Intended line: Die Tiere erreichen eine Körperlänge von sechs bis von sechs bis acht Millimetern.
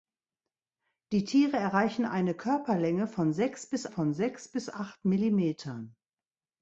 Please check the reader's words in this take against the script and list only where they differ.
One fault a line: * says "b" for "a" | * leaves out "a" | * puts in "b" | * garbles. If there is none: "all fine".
all fine